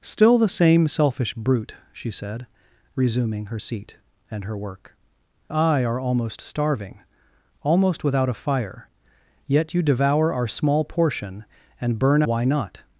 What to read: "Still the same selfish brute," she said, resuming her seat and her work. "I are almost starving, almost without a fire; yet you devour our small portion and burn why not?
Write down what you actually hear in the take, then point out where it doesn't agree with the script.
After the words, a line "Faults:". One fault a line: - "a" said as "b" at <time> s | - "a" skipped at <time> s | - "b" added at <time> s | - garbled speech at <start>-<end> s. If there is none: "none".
"Still the same selfish brute," she said, resuming her seat and her work. "I are almost starving, almost without a fire; yet you devour our small portion and burn why not?
Faults:
none